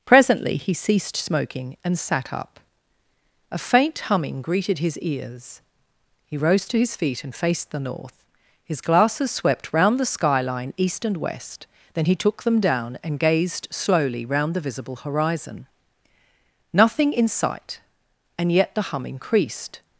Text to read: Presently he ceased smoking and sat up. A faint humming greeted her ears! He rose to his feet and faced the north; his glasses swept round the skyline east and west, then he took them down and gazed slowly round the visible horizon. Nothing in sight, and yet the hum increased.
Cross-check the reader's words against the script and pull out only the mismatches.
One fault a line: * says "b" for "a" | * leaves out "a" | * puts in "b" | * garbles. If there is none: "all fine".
* says "his" for "her"